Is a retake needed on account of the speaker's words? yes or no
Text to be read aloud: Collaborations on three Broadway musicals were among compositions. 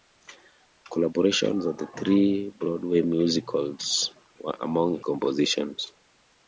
no